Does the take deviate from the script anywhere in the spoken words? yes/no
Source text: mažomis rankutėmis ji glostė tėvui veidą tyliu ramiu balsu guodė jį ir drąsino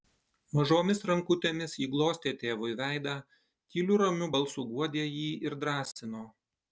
no